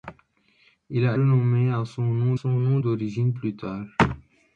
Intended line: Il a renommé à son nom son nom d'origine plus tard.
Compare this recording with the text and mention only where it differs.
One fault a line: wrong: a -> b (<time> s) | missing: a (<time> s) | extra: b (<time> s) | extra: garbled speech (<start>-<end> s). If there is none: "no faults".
no faults